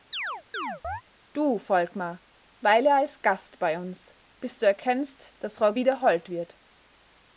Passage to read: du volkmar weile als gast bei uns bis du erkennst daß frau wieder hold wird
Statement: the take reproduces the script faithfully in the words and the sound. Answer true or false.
false